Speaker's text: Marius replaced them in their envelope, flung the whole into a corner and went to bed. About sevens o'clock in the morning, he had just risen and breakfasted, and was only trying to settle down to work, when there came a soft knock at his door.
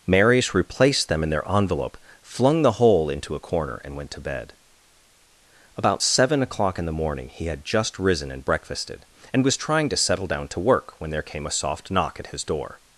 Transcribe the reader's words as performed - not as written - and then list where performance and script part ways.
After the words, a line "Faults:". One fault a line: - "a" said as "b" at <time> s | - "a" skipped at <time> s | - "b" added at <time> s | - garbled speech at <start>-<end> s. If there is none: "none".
Marius replaced them in their envelope, flung the whole into a corner and went to bed. About seven o'clock in the morning, he had just risen and breakfasted, and was trying to settle down to work, when there came a soft knock at his door.
Faults:
- "sevens" said as "seven" at 6.0 s
- "only" skipped at 9.6 s